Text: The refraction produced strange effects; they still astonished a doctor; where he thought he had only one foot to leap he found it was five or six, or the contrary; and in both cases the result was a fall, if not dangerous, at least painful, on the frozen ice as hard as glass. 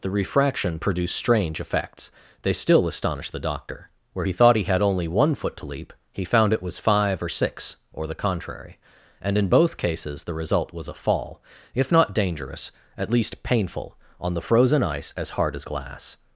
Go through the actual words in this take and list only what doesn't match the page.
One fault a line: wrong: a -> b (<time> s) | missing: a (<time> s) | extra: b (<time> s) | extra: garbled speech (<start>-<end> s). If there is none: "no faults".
wrong: a -> the (3.3 s)